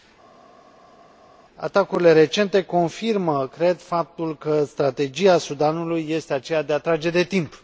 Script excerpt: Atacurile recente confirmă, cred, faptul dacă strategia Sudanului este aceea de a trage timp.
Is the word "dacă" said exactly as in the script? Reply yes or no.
no